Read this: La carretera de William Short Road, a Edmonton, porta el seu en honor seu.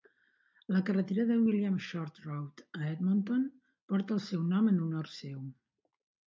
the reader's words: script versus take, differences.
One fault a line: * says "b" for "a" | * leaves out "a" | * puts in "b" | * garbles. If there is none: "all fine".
* puts in "nom"